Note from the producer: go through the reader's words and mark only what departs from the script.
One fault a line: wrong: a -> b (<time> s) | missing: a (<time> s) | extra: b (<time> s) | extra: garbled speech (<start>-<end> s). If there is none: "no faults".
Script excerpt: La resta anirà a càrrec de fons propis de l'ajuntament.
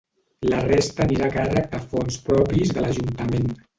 no faults